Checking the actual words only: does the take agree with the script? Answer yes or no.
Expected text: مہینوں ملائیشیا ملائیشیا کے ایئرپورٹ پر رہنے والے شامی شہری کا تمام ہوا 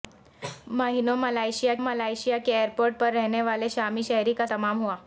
yes